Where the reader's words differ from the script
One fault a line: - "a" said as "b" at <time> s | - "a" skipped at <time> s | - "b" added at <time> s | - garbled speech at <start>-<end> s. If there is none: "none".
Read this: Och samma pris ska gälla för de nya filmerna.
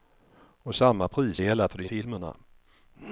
- "ska" skipped at 1.4 s
- "nya" skipped at 1.9 s